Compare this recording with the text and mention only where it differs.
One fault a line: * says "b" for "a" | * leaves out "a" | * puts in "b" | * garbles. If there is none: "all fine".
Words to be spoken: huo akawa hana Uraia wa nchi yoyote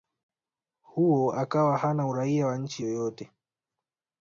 all fine